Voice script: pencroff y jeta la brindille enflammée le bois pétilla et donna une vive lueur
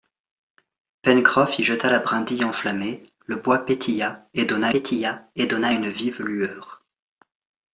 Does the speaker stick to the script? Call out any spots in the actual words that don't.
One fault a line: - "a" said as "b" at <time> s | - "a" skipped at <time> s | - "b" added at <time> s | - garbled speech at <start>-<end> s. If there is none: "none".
- "pétilla et donna" added at 4.7 s